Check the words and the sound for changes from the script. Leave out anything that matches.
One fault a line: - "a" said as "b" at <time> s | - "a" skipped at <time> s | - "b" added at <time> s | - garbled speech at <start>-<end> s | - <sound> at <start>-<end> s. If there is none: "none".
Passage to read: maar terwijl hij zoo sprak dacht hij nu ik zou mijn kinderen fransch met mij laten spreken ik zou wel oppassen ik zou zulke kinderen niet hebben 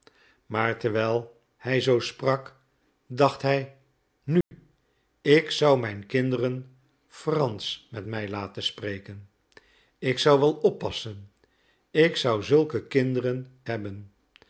- dropout at 4.4-4.5 s
- "niet" skipped at 13.5 s